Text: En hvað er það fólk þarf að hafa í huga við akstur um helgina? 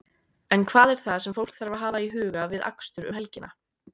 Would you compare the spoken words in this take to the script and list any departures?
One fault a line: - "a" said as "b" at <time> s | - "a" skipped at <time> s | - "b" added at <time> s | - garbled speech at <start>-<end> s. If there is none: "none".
- "sem" added at 1.2 s